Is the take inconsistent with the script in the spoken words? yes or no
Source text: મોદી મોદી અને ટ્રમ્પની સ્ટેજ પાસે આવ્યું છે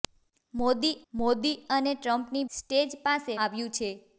no